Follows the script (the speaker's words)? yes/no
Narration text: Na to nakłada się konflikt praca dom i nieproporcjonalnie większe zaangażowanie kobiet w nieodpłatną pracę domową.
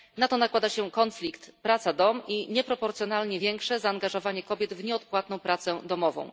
yes